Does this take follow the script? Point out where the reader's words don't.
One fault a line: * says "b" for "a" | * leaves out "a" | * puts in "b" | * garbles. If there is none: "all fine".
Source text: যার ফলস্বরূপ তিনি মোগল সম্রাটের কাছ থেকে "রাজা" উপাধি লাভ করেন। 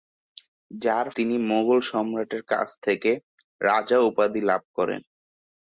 * leaves out "ফলস্বরূপ"